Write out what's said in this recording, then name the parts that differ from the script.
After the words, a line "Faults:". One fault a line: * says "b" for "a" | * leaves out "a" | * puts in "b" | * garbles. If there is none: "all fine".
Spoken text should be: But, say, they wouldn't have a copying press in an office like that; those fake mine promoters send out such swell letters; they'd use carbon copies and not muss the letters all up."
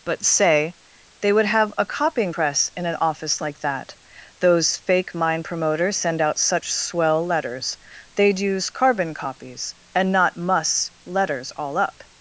But, say, they would have a copying press in an office like that; those fake mine promoters send out such swell letters; they'd use carbon copies and not muss letters all up."
Faults:
* says "would" for "wouldn't"
* leaves out "the"